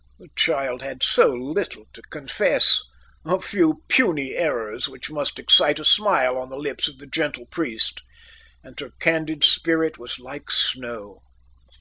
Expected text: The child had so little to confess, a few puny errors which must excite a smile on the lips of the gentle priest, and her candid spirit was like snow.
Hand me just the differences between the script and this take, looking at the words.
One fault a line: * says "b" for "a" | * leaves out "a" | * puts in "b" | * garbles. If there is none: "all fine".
all fine